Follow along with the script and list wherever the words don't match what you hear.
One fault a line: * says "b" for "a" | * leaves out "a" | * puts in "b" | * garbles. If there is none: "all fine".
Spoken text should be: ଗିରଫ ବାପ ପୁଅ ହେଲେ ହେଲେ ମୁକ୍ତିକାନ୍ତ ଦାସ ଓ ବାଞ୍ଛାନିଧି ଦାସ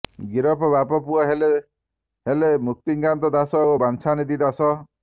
all fine